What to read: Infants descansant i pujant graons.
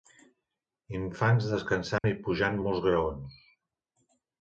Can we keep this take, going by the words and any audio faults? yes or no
no